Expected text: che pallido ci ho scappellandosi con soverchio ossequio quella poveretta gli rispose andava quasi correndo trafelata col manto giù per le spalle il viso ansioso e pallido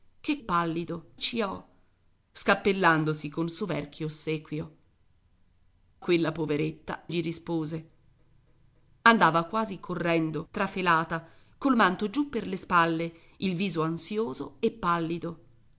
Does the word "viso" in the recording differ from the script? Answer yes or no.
no